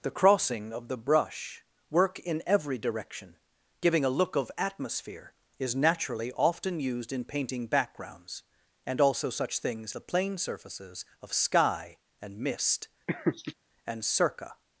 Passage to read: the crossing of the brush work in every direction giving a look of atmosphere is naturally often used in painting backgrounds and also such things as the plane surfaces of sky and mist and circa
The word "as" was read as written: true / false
false